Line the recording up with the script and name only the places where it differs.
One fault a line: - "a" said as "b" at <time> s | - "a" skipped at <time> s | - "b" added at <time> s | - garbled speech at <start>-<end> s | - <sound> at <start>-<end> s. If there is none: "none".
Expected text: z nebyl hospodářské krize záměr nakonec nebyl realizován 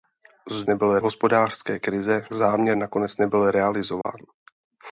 - dropout at 4.0-4.0 s